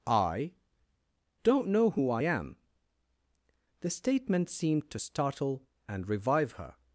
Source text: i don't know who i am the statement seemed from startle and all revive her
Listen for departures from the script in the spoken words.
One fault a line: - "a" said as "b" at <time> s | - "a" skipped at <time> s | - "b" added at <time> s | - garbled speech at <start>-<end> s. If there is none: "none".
- "from" said as "to" at 4.9 s
- "all" skipped at 6.1 s